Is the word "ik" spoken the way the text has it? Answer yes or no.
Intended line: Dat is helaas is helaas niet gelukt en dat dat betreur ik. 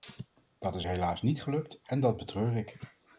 yes